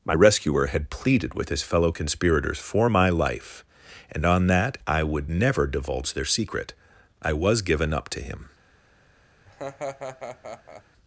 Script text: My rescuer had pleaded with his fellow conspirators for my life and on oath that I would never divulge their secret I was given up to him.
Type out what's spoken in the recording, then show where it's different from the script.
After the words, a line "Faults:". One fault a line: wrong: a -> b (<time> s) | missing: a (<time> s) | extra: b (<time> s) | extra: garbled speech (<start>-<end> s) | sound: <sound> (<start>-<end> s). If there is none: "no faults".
My rescuer had pleaded with his fellow conspirators for my life and on that I would never divulge their secret I was given up to him.
Faults:
missing: oath (4.5 s)
sound: laugh (9.5-10.8 s)